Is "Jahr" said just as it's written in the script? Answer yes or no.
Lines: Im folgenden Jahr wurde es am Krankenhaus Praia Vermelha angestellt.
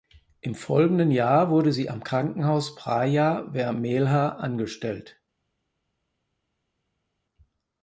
yes